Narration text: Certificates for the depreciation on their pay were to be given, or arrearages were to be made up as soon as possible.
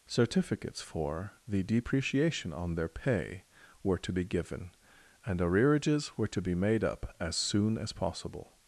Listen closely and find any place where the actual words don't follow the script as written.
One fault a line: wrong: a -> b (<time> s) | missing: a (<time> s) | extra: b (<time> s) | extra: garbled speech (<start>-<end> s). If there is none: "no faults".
wrong: or -> and (5.2 s)